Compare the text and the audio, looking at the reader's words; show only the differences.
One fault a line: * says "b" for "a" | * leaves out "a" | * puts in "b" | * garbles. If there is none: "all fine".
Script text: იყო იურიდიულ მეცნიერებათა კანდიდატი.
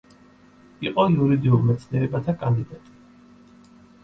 all fine